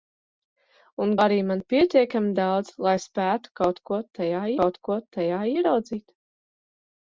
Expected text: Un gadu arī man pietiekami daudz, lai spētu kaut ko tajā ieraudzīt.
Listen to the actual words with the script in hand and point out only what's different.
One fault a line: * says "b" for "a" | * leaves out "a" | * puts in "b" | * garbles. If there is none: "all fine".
* leaves out "gadu"
* puts in "kaut ko tajā"